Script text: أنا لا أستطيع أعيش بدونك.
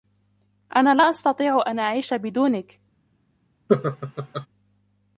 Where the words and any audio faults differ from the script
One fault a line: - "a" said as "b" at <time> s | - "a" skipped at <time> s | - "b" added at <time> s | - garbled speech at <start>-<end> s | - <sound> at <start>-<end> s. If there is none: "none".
- "أن" added at 1.7 s
- laugh at 3.7-4.5 s